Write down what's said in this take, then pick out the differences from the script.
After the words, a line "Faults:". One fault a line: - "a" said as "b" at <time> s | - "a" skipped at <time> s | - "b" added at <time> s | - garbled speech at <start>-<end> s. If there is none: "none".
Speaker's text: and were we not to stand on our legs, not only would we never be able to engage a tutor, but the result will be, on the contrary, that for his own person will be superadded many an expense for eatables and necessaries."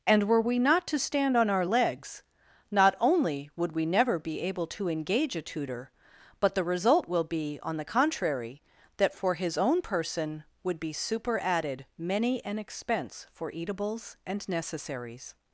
and were we not to stand on our legs, not only would we never be able to engage a tutor, but the result will be, on the contrary, that for his own person would be superadded many an expense for eatables and necessaries."
Faults:
- "will" said as "would" at 10.6 s